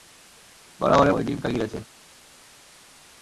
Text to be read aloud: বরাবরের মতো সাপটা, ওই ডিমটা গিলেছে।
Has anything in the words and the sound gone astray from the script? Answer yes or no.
yes